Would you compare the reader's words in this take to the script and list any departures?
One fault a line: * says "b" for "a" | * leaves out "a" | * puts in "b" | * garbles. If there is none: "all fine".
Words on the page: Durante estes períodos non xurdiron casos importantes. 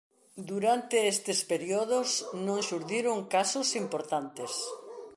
all fine